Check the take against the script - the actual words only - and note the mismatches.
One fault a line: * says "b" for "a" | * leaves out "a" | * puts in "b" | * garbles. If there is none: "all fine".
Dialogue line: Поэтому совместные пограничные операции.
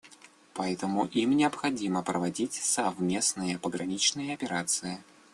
* puts in "им необходимо проводить"